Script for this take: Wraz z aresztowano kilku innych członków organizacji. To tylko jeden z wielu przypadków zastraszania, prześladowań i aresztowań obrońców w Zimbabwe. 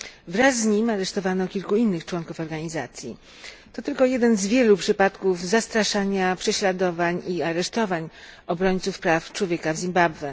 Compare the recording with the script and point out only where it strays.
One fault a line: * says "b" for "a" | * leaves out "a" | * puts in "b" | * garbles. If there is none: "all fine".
* puts in "nim"
* puts in "praw człowieka"